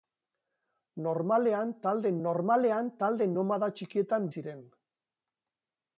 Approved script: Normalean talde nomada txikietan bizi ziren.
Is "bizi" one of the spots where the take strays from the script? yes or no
yes